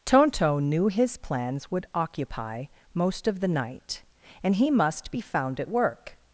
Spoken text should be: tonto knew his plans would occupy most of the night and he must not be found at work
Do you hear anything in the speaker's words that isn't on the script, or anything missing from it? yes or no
yes